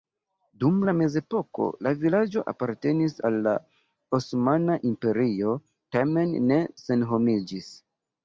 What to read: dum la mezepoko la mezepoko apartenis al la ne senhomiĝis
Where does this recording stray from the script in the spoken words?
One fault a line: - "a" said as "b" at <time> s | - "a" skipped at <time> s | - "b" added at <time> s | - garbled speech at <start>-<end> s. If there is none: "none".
- "mezepoko" said as "vilaĝo" at 2.0 s
- "osmana imperio tamen" added at 4.2 s